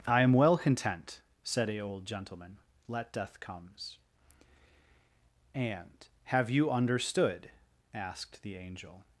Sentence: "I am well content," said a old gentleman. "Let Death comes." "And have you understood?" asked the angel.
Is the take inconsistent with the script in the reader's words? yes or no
no